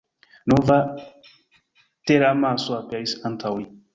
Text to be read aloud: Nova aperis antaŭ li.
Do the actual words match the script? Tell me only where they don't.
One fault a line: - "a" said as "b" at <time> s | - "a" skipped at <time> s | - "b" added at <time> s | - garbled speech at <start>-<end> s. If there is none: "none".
- "teramaso" added at 2.1 s